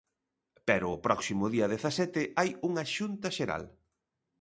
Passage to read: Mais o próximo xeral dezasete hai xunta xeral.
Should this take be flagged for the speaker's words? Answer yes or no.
yes